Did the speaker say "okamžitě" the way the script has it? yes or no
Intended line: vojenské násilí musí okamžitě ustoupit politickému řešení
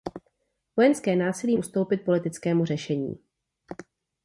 no